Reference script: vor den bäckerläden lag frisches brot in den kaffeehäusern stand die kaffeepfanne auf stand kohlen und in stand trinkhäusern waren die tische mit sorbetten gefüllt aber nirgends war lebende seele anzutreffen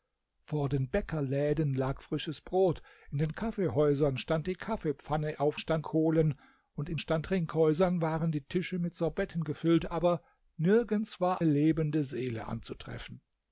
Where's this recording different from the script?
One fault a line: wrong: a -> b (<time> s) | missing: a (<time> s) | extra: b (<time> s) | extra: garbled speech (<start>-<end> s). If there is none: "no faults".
no faults